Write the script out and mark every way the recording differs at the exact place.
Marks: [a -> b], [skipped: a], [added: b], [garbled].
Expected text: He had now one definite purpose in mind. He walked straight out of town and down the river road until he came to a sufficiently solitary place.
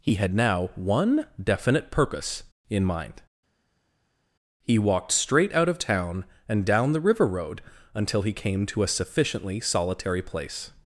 He had now one definite purpose in mind. He walked straight out of town and down the river road until he came to a sufficiently solitary place.